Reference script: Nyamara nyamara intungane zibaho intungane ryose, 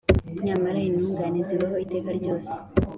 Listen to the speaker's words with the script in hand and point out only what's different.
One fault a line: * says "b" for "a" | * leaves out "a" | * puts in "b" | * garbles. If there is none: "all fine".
* leaves out "nyamara"
* says "iteka" for "intungane"